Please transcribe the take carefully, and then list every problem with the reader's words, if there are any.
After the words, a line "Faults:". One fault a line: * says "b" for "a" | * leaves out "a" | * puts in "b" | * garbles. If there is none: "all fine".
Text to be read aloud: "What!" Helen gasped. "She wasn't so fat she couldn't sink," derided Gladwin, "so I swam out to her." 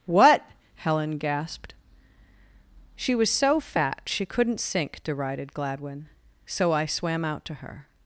"What!" Helen gasped. "She was so fat she couldn't sink," derided Gladwin, "so I swam out to her."
Faults:
* says "was" for "wasn't"